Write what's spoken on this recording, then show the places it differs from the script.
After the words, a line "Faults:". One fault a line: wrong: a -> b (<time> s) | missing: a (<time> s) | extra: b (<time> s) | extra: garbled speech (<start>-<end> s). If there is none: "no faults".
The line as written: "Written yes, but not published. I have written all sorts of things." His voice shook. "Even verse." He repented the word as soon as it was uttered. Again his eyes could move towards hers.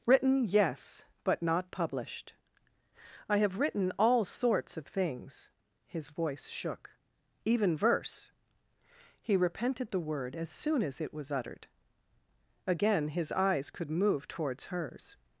"Written yes, but not published. I have written all sorts of things." His voice shook. "Even verse." He repented the word as soon as it was uttered. Again his eyes could move towards hers.
Faults:
no faults